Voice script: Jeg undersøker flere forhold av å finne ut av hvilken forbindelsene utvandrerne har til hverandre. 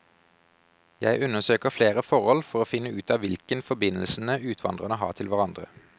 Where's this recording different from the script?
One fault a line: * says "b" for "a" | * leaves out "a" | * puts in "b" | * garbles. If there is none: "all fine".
* says "for" for "av"